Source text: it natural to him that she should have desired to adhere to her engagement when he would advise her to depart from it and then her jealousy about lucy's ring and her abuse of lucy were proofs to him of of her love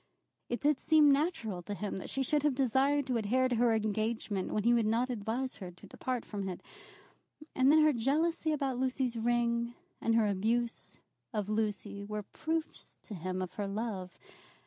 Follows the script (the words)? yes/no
no